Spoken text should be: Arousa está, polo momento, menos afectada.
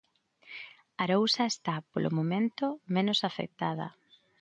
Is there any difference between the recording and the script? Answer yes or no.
no